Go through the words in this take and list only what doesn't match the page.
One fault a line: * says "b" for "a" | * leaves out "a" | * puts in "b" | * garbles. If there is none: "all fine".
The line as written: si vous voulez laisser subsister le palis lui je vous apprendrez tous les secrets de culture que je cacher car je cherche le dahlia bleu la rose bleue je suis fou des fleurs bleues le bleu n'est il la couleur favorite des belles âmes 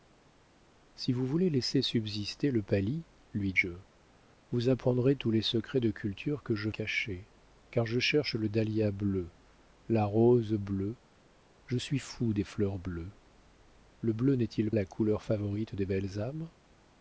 all fine